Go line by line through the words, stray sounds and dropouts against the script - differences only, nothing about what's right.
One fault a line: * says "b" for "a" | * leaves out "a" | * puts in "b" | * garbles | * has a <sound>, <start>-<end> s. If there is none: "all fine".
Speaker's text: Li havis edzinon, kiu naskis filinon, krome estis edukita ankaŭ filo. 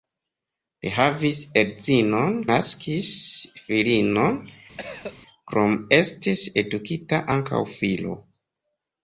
* leaves out "kiu"
* has a cough, 4.8-5.2 s